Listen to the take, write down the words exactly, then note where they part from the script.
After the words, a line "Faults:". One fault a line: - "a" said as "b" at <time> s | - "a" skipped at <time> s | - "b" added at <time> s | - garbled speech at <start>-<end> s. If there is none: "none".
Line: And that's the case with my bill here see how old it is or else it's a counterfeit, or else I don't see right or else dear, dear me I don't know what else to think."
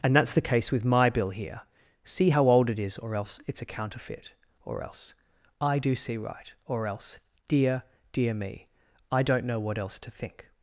And that's the case with my bill here see how old it is or else it's a counterfeit, or else I do see right or else dear, dear me I don't know what else to think."
Faults:
- "don't" said as "do" at 5.8 s